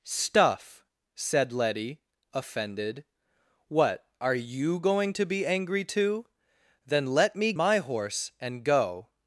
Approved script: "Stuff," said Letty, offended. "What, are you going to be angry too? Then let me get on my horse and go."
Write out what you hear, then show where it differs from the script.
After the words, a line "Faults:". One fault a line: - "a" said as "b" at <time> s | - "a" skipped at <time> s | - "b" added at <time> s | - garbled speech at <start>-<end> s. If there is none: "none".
"Stuff," said Letty, offended. "What, are you going to be angry too? Then let me my horse and go."
Faults:
- "get on" skipped at 7.5 s